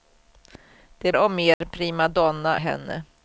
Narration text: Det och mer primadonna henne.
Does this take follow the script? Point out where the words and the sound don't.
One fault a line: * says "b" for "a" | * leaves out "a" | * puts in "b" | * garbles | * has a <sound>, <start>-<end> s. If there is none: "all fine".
* has a dropout, 1.5-1.6 s